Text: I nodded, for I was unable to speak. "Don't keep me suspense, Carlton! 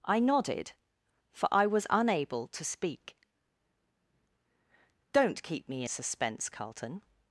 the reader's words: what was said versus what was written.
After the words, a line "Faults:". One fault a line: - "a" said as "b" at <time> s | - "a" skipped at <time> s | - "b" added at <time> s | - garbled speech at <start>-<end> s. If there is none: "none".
I nodded, for I was unable to speak. "Don't keep me suspense, Carlton!
Faults:
none